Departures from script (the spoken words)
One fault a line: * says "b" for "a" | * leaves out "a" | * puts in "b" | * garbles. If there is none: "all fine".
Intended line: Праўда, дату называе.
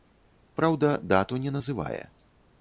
* puts in "не"